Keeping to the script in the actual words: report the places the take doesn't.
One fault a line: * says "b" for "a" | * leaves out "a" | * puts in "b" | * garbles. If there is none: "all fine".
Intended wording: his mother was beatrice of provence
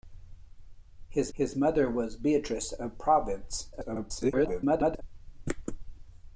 * puts in "his"
* garbles